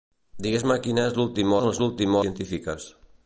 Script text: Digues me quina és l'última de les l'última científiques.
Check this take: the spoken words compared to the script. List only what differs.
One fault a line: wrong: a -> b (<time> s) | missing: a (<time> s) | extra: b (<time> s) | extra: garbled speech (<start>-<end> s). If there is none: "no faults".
no faults